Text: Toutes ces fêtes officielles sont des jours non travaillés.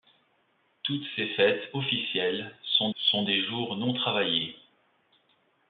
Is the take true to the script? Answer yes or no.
no